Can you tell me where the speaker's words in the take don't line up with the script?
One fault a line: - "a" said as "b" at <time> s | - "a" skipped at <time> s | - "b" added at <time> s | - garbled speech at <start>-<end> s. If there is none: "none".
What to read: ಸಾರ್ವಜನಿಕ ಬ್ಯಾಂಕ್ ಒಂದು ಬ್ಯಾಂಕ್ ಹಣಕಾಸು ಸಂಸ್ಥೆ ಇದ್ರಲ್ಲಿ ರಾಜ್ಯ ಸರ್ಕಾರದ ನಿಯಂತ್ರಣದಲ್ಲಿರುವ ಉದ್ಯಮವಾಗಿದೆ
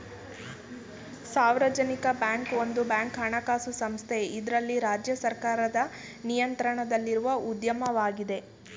none